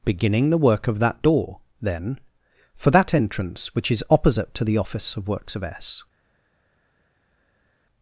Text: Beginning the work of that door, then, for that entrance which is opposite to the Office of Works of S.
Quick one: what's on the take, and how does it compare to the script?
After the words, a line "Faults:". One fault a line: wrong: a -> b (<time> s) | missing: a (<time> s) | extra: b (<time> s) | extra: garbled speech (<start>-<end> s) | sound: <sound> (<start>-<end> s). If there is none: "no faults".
Beginning the work of that door, then, for that entrance which is opposite to the Office of Works of S.
Faults:
no faults